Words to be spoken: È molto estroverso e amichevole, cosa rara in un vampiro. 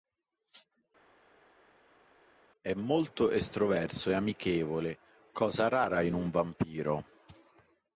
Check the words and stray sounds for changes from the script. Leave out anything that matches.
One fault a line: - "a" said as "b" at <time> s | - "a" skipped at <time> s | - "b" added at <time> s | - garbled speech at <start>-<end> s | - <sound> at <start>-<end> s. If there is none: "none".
none